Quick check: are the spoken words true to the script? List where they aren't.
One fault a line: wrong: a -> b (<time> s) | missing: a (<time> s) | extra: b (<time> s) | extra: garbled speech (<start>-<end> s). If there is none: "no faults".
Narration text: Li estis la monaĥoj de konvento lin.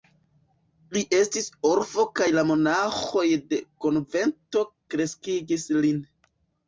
extra: orfo kaj (1.7 s)
extra: kreskigis (5.0 s)